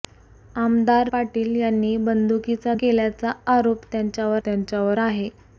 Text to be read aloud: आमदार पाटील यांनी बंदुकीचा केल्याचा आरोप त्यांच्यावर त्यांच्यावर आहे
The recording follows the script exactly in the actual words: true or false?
true